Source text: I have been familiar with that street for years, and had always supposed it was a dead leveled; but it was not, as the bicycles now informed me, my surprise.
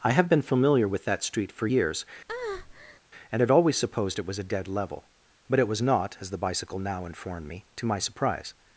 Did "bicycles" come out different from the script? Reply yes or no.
yes